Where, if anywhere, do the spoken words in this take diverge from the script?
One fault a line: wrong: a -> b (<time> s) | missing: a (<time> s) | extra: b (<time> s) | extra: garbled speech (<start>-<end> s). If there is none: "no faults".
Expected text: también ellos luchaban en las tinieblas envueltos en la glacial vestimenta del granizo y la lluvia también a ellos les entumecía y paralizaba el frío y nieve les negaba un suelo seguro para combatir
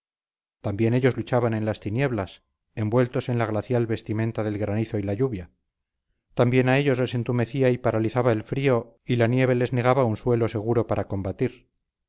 extra: la (9.2 s)